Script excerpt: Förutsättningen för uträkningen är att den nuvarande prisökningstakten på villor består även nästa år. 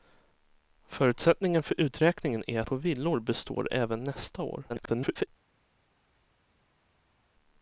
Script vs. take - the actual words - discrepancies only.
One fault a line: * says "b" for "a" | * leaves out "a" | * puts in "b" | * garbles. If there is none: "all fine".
* leaves out "den nuvarande prisökningstakten"
* garbles